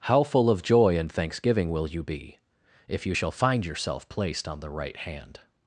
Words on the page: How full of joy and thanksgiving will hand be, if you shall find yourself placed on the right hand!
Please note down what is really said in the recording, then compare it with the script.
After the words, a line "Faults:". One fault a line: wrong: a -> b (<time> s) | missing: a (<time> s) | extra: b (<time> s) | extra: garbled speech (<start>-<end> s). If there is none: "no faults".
How full of joy and thanksgiving will you be, if you shall find yourself placed on the right hand!
Faults:
wrong: hand -> you (1.9 s)